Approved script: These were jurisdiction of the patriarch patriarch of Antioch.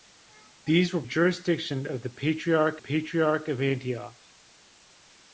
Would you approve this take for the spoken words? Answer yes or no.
yes